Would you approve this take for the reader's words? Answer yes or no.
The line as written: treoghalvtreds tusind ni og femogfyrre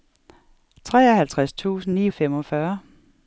yes